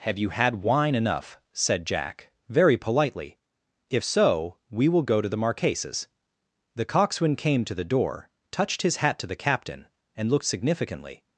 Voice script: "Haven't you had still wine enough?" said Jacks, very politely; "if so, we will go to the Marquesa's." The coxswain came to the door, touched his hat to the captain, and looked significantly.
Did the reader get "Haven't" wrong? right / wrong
wrong